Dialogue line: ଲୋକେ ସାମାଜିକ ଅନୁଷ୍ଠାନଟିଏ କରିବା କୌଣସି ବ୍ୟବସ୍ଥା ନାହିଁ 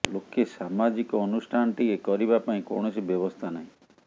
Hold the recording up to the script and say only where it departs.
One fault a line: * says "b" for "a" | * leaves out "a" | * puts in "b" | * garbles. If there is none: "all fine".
* puts in "ପାଇଁ"